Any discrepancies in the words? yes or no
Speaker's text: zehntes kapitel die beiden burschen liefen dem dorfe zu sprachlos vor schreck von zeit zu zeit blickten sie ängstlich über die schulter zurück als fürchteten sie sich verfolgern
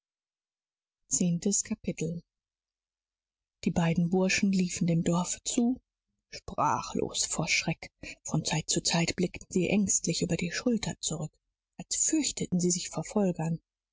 no